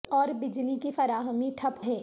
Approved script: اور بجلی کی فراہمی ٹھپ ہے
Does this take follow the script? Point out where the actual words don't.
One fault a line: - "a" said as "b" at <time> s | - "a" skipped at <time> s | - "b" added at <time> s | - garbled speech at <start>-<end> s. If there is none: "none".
none